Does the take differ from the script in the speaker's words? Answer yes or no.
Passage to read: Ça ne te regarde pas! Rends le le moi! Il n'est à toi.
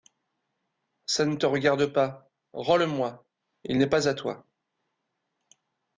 yes